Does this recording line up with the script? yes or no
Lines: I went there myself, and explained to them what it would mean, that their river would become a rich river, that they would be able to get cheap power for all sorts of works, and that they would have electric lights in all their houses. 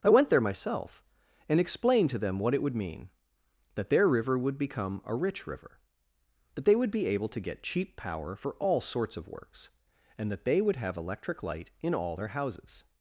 no